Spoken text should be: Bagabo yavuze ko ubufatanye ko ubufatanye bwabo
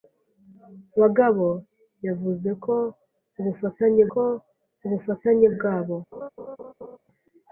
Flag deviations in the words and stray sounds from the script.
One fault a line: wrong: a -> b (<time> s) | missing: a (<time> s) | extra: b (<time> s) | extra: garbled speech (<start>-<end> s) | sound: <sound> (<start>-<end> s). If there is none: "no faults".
sound: laugh (6.1-7.0 s)